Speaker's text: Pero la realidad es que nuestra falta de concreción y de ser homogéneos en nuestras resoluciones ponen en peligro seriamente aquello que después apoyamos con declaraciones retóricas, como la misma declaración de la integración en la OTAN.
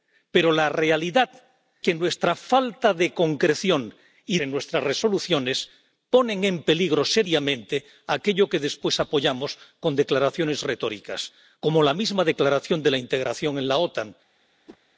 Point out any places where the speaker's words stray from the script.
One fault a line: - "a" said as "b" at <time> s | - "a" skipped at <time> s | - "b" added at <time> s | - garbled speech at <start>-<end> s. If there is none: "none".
- "es" skipped at 1.3 s
- "de ser homogéneos" skipped at 4.4 s